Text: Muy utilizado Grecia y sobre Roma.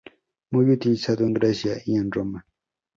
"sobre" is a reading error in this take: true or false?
true